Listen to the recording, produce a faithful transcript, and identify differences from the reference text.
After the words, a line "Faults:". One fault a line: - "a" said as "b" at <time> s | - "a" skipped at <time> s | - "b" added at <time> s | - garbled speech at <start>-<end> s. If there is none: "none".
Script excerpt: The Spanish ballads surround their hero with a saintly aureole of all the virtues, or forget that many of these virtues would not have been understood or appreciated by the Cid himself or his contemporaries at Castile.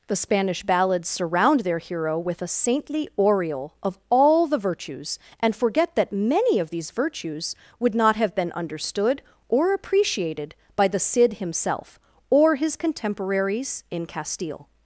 The Spanish ballads surround their hero with a saintly aureole of all the virtues, and forget that many of these virtues would not have been understood or appreciated by the Cid himself or his contemporaries in Castile.
Faults:
- "or" said as "and" at 5.4 s
- "at" said as "in" at 13.9 s